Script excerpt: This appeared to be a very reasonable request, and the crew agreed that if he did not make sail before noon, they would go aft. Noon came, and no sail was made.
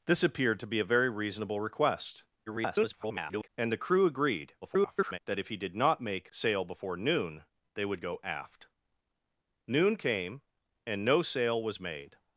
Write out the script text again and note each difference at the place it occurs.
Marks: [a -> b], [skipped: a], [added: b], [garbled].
This appeared to be a very reasonable request, [garbled] and the crew agreed [garbled] that if he did not make sail before noon, they would go aft. Noon came, and no sail was made.